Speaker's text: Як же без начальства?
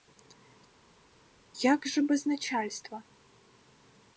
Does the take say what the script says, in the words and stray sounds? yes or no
yes